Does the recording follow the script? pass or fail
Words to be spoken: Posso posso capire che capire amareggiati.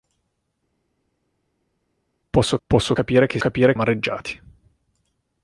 pass